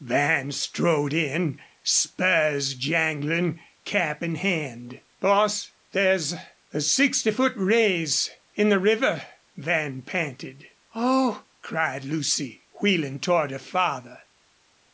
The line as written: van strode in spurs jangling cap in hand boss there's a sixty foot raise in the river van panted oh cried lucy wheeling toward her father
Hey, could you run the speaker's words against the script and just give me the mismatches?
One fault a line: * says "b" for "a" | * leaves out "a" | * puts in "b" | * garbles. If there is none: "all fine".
all fine